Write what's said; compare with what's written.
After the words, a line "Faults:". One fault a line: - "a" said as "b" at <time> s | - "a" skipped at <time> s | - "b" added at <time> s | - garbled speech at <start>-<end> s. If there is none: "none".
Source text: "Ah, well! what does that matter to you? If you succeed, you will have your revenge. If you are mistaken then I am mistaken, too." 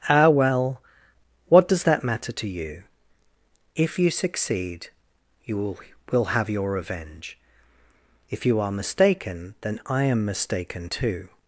"Ah, well! what does that matter to you? If you succeed, you will will have your revenge. If you are mistaken then I am mistaken, too."
Faults:
- "will" added at 6.1 s